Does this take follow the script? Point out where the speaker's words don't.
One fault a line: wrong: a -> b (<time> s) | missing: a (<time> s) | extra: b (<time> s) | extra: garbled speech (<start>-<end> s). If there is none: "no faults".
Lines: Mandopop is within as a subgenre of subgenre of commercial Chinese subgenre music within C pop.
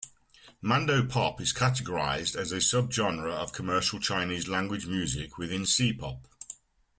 wrong: within -> categorized (1.5 s)
missing: subgenre of (3.5 s)
wrong: subgenre -> language (4.5 s)